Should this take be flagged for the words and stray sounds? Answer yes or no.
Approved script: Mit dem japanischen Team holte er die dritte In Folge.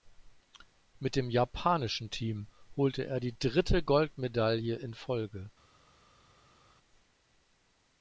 yes